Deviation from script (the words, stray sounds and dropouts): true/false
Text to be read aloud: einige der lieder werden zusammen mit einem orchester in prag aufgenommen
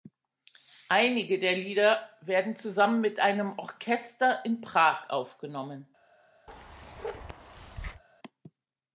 true